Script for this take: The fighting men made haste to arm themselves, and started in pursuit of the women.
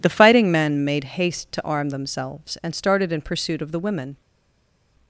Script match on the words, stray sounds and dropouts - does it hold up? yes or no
yes